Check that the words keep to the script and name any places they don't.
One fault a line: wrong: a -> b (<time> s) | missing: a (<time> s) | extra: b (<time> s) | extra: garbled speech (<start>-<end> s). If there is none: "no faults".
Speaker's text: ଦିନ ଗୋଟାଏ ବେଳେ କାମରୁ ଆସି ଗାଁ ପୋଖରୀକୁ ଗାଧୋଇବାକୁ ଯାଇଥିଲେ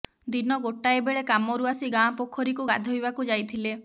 no faults